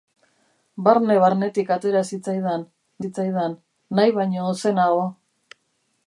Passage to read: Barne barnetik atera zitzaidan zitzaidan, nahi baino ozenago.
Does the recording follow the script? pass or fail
pass